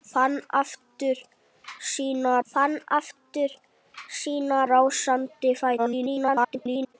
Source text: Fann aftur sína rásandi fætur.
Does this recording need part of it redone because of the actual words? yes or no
yes